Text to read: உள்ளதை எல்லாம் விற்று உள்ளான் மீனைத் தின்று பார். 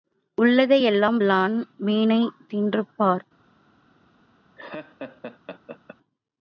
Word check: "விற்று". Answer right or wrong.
wrong